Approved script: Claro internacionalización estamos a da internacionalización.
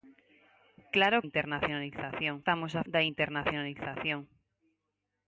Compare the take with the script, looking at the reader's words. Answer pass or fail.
pass